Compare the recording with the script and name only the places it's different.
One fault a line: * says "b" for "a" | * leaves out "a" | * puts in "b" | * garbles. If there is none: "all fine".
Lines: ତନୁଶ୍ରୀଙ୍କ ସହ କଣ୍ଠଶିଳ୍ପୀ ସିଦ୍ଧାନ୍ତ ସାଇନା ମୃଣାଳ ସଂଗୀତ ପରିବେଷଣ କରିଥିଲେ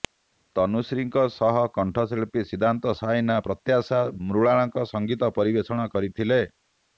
* puts in "ପ୍ରତ୍ୟାଶା"